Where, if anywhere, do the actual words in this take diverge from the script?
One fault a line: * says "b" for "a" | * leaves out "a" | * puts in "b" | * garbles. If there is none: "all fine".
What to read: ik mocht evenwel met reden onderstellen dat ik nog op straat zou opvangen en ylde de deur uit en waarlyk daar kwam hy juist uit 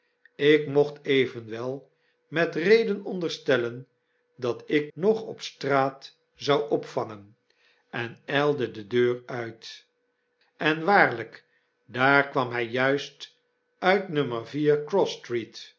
all fine